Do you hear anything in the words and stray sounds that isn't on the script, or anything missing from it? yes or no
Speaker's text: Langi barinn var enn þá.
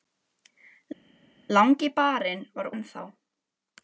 no